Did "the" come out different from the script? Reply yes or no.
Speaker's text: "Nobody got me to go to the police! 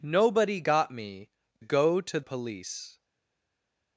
yes